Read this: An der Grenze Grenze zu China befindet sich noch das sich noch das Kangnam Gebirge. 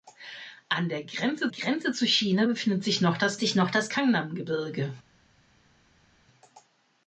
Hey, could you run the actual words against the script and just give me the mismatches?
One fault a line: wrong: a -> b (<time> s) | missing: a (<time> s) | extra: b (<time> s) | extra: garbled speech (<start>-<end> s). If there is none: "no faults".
no faults